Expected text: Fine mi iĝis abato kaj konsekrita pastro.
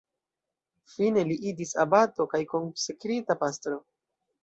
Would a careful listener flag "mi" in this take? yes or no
yes